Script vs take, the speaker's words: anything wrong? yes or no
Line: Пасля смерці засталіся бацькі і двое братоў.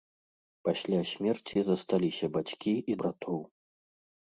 yes